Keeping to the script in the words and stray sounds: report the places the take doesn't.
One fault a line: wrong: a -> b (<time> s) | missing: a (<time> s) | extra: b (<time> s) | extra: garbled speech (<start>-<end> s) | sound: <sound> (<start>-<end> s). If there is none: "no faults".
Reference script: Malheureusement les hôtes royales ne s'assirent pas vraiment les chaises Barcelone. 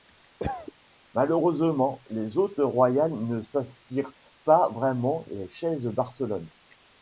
sound: cough (0.4-0.7 s)